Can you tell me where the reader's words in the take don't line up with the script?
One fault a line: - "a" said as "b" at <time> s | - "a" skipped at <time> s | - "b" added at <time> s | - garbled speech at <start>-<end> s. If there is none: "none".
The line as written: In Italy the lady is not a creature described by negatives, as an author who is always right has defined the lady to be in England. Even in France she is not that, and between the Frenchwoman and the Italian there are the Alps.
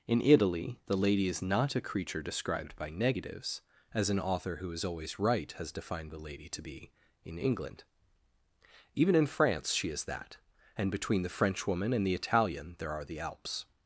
- "not" skipped at 10.0 s